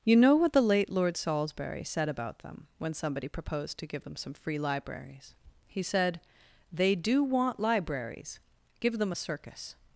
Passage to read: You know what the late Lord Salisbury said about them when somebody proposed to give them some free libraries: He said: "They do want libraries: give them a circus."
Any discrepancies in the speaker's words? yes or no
no